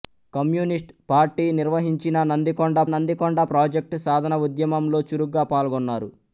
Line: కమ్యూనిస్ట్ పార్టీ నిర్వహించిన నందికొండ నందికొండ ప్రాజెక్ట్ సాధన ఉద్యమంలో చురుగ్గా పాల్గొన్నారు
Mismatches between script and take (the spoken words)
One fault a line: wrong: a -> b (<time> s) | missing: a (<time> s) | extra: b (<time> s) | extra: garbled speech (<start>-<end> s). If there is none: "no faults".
no faults